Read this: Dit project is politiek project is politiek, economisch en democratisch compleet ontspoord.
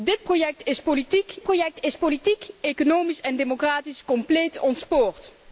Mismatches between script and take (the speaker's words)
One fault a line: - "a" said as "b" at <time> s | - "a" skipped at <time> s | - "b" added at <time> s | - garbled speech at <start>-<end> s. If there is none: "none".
none